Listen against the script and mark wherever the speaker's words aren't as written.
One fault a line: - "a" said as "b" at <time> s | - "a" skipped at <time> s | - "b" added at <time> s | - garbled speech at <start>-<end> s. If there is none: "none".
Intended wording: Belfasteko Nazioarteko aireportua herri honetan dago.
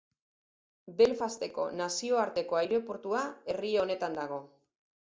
none